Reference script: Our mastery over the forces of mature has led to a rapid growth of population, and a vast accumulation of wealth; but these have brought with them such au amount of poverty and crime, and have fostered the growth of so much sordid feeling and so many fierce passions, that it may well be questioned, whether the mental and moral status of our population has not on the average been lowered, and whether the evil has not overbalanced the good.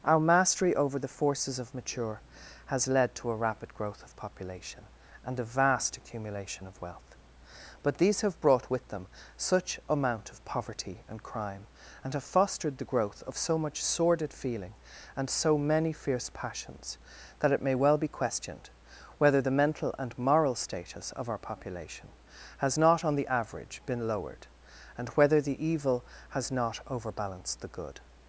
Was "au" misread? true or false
true